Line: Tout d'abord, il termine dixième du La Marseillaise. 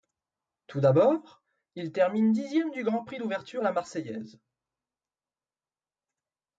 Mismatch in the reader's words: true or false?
true